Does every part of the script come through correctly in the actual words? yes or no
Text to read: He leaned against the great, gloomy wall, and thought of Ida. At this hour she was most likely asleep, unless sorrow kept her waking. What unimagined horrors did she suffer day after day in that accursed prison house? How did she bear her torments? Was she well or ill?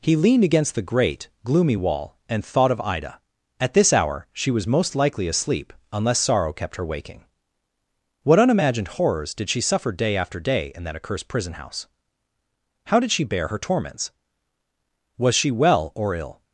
yes